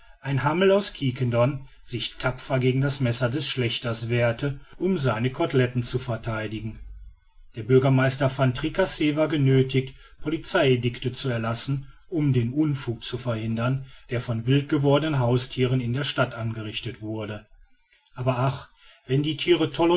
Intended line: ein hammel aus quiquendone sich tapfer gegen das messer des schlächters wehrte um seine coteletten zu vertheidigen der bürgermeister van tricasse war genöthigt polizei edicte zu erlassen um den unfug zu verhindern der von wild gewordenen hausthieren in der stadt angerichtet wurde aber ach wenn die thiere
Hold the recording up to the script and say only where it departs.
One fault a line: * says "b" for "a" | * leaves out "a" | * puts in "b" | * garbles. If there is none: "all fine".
all fine